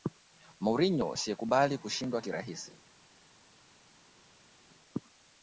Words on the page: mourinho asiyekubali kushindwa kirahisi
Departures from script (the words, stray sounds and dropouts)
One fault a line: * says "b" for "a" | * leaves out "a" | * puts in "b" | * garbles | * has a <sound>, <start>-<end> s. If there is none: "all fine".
all fine